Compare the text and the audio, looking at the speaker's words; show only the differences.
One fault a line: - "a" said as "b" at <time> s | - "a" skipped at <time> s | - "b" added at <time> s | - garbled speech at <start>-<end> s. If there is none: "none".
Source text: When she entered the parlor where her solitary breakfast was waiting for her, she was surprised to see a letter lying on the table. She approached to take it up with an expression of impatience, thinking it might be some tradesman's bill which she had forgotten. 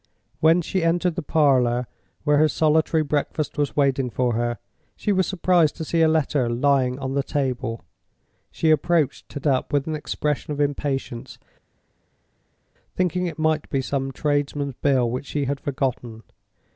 - "take" skipped at 9.4 s